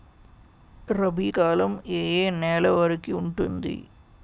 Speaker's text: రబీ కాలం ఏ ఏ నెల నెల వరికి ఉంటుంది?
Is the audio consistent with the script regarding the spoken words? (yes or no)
no